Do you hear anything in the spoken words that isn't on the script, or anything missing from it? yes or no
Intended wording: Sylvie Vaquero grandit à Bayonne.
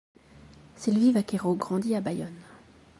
no